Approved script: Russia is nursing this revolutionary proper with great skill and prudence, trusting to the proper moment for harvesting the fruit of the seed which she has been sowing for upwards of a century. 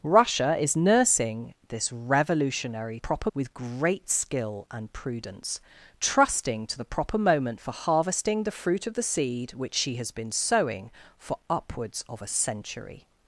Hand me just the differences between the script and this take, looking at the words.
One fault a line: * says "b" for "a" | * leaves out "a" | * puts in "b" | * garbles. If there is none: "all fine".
all fine